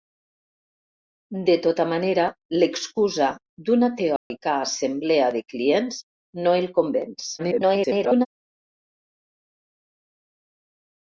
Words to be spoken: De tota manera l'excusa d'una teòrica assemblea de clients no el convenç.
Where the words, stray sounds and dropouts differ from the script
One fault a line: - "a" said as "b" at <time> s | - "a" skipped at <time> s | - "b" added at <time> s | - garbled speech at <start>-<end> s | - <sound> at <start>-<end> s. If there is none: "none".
- dropout at 4.2-4.3 s
- garbled speech at 7.4-8.3 s